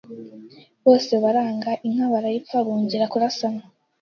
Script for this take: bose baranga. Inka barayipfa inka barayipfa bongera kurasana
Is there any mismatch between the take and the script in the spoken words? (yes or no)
yes